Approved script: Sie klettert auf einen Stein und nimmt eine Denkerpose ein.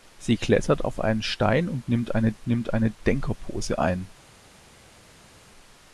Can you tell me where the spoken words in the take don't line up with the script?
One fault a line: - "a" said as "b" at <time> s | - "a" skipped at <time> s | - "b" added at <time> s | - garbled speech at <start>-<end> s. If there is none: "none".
- "nimmt eine" added at 2.5 s